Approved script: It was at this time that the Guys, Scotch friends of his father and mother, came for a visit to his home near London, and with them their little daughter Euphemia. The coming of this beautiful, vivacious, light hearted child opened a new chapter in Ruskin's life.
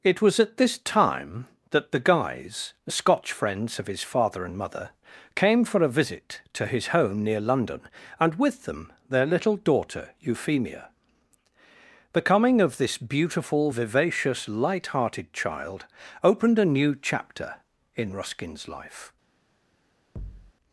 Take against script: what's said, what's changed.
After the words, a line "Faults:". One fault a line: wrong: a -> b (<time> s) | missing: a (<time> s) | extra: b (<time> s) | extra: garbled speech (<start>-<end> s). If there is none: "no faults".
It was at this time that the Guys, Scotch friends of his father and mother, came for a visit to his home near London, and with them their little daughter Euphemia. The coming of this beautiful, vivacious, light hearted child opened a new chapter in Ruskin's life.
Faults:
no faults